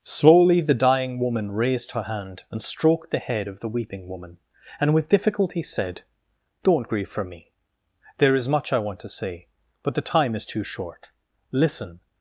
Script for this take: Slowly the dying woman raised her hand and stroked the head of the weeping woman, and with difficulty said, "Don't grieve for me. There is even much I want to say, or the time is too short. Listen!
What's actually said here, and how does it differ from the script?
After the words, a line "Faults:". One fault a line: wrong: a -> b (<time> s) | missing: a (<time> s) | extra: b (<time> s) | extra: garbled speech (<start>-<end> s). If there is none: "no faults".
Slowly the dying woman raised her hand and stroked the head of the weeping woman, and with difficulty said, "Don't grieve for me. There is much I want to say, but the time is too short. Listen!
Faults:
missing: even (8.5 s)
wrong: or -> but (9.8 s)